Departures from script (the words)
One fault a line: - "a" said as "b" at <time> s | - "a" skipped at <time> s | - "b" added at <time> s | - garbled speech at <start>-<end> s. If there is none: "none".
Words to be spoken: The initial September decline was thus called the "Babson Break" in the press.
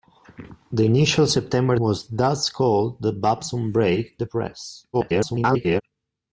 - "decline" skipped at 1.8 s
- "in" skipped at 4.2 s
- garbled speech at 4.9-5.8 s